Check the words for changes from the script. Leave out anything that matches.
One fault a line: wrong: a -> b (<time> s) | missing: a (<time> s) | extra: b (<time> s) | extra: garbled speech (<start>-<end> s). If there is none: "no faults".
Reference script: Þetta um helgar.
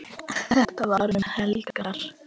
extra: var (0.9 s)